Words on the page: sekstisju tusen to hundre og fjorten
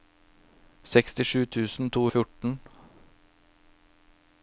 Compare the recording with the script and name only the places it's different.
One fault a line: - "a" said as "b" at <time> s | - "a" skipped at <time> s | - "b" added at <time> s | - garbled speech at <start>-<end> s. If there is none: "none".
- "hundre" skipped at 2.0 s